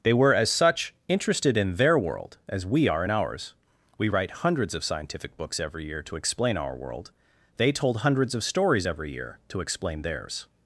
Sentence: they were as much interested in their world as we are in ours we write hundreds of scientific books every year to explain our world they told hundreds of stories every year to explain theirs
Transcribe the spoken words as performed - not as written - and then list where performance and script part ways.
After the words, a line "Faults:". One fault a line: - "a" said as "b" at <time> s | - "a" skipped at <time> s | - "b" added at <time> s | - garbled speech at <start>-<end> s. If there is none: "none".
they were as such interested in their world as we are in ours we write hundreds of scientific books every year to explain our world they told hundreds of stories every year to explain theirs
Faults:
- "much" said as "such" at 0.5 s